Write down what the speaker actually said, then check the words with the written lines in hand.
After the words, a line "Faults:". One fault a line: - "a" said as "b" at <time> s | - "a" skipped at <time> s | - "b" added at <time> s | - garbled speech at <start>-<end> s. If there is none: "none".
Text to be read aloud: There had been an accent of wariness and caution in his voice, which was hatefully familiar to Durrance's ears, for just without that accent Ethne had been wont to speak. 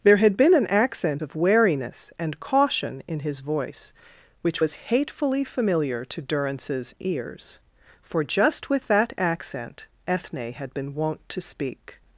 There had been an accent of wariness and caution in his voice, which was hatefully familiar to Durrance's ears, for just with that accent Ethne had been wont to speak.
Faults:
- "without" said as "with" at 8.7 s